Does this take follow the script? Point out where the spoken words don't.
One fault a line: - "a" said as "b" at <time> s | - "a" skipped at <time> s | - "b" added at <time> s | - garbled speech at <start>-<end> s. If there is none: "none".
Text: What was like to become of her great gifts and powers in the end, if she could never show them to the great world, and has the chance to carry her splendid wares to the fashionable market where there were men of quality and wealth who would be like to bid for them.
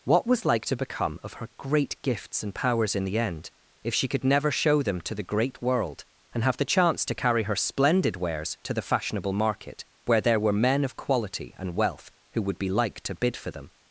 - "has" said as "have" at 6.4 s